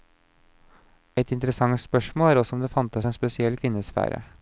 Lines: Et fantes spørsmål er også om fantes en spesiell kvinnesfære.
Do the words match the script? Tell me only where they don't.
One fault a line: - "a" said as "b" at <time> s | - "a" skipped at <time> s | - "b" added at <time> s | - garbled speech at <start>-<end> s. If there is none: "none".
- "fantes" said as "interessant" at 1.3 s
- "det" added at 2.6 s